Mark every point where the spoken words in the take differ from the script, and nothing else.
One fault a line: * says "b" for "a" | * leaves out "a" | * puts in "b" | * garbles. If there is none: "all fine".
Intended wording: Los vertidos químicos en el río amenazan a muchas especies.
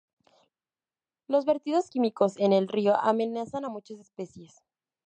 all fine